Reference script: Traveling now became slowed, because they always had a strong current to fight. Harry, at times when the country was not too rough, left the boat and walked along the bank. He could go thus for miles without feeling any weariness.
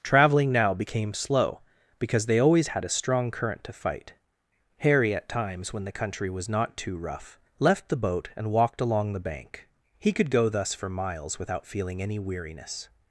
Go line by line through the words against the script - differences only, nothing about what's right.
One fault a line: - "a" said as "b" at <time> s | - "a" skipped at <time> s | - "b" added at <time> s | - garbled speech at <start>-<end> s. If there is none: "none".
- "slowed" said as "slow" at 1.1 s